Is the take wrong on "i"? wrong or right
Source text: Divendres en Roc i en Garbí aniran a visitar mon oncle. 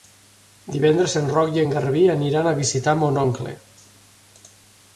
right